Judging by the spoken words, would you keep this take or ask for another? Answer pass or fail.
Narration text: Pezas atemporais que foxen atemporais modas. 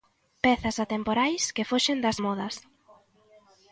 fail